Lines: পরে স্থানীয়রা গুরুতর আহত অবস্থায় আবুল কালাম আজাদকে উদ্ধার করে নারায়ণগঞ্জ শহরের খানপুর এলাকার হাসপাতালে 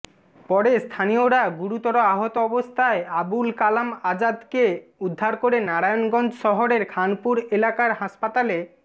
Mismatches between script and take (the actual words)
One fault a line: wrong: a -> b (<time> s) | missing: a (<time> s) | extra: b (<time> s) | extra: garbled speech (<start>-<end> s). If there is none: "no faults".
no faults